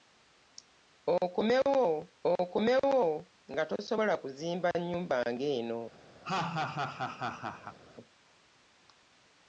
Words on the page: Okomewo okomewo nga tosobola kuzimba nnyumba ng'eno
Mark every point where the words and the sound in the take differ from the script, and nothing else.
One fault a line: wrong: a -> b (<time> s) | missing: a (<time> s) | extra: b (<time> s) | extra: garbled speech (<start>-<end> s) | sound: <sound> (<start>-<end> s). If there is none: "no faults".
sound: laugh (6.2-7.8 s)